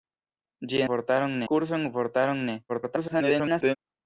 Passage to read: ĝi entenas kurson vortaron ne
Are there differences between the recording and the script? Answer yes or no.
yes